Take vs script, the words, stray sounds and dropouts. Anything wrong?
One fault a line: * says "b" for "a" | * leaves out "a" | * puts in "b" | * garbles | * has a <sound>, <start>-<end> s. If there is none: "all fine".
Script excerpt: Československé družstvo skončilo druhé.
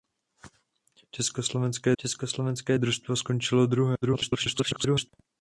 * puts in "československé"
* garbles